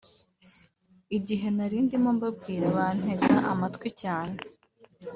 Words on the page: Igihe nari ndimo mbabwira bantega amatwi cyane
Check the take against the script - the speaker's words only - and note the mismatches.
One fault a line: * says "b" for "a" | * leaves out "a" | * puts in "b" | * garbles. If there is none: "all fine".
all fine